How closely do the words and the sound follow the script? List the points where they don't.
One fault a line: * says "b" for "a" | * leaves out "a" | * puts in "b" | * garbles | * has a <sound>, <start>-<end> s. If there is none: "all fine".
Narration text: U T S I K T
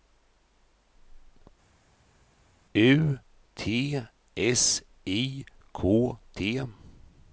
all fine